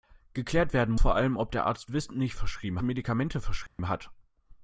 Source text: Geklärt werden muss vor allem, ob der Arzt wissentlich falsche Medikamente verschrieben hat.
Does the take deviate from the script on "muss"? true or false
true